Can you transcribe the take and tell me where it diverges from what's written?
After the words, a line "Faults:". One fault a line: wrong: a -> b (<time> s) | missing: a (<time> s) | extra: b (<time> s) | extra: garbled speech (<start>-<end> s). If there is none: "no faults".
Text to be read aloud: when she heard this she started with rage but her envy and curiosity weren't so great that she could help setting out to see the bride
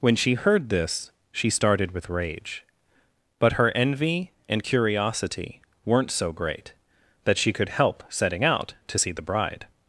when she heard this she started with rage but her envy and curiosity weren't so great that she could help setting out to see the bride
Faults:
no faults